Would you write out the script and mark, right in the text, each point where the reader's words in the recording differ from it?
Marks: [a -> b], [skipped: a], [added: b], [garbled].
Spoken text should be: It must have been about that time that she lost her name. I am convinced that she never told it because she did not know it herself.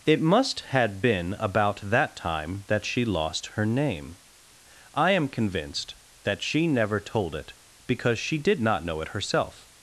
It must [have -> had] been about that time that she lost her name. I am convinced that she never told it because she did not know it herself.